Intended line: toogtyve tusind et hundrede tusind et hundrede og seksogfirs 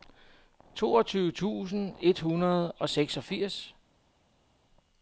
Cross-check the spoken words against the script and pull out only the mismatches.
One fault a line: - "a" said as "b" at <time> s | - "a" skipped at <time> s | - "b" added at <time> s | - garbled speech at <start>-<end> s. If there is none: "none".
- "tusind et hundrede" skipped at 2.7 s